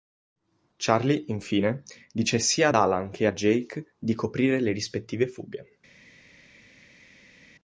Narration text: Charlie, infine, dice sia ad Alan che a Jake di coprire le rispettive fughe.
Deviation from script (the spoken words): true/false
false